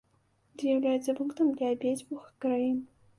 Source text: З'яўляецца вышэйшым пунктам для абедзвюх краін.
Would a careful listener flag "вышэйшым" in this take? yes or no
yes